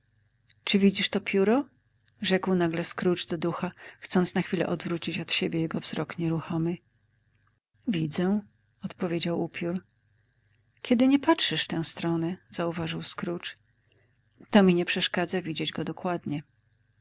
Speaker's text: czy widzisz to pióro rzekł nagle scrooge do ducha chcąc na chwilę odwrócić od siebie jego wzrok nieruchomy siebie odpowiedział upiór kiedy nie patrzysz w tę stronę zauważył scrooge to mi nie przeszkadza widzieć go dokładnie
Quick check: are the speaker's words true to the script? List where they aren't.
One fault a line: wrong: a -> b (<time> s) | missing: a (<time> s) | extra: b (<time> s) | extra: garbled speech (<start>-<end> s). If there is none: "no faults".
wrong: siebie -> widzę (7.9 s)